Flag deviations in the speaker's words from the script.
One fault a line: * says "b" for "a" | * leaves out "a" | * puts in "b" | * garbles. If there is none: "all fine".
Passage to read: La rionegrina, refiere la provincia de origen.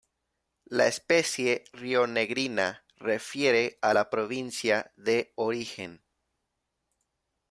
* puts in "especie"
* puts in "a"